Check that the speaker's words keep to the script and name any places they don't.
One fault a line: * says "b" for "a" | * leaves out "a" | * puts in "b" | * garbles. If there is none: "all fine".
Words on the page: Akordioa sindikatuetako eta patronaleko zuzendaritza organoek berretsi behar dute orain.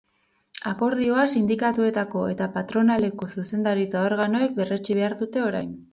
all fine